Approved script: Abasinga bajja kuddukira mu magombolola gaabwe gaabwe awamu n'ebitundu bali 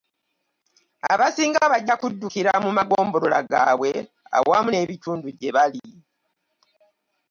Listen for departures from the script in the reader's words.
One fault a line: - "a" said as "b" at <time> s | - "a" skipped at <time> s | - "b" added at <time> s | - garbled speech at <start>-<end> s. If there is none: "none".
- "gaabwe" skipped at 3.9 s
- "gye" added at 5.4 s